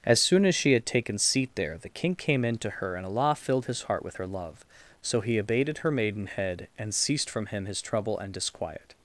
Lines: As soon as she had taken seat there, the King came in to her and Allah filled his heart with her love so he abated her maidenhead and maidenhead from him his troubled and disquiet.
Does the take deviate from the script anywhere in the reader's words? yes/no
yes